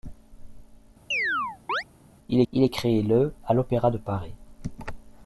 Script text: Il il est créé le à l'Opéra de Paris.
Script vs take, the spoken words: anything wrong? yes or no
no